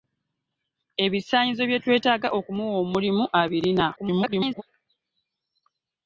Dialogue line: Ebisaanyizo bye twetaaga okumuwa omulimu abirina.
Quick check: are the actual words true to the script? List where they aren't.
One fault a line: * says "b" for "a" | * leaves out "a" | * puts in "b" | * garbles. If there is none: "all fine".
* garbles